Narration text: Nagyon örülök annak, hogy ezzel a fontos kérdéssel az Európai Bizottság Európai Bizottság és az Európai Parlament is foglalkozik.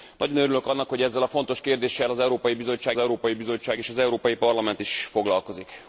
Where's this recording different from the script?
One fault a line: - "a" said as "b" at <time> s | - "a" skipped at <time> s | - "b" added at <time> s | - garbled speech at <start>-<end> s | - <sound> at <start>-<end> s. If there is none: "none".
none